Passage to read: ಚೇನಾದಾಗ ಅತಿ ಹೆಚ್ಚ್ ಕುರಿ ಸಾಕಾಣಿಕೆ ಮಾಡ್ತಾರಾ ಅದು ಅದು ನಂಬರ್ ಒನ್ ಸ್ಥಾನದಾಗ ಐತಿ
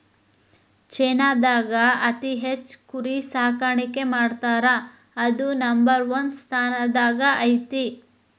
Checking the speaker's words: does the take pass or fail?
fail